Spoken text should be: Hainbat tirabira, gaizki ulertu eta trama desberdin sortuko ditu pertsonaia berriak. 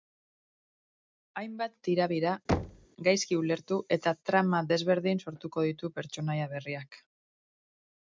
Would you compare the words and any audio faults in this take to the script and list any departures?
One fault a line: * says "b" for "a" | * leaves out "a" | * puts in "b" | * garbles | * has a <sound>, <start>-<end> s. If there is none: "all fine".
* has a thud, 2.5-2.9 s